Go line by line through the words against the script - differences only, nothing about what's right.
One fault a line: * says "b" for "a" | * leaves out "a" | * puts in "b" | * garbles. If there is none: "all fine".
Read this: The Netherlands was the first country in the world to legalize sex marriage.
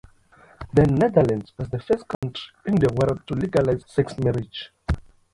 all fine